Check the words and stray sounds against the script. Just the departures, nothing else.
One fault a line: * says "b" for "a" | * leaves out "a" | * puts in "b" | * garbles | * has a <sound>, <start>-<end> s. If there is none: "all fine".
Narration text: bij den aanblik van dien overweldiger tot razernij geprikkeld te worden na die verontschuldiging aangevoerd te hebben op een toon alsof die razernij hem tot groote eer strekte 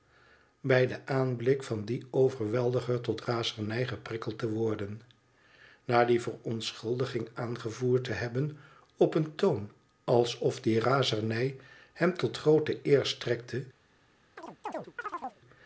* has a chirp, 14.4-15.4 s